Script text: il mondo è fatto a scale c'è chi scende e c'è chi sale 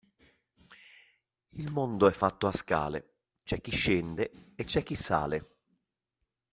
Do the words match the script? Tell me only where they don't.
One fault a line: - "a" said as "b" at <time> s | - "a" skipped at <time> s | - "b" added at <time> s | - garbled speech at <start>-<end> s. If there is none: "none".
none